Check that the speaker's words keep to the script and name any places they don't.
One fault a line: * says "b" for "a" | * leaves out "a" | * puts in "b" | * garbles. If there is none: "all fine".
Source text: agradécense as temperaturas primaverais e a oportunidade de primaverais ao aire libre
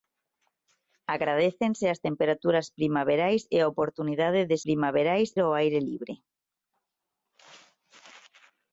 all fine